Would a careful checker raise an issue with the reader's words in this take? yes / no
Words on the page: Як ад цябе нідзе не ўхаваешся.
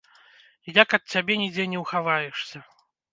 no